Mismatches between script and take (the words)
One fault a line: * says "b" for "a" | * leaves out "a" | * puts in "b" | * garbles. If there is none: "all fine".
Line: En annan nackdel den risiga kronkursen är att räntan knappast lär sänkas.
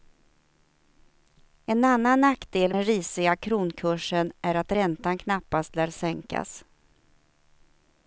all fine